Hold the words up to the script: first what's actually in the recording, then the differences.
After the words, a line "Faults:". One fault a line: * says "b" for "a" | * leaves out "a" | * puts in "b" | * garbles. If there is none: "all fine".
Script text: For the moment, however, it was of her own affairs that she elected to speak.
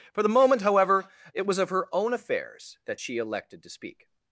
For the moment, however, it was of her own affairs that she elected to speak.
Faults:
all fine